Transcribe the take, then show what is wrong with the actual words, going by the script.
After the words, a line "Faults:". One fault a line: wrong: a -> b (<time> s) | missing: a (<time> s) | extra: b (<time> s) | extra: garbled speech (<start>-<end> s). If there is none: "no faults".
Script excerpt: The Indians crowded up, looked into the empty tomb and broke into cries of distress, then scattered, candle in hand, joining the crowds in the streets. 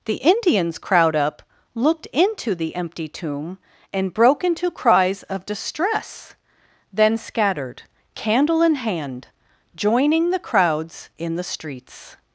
The Indians crowd up, looked into the empty tomb and broke into cries of distress, then scattered, candle in hand, joining the crowds in the streets.
Faults:
wrong: crowded -> crowd (0.8 s)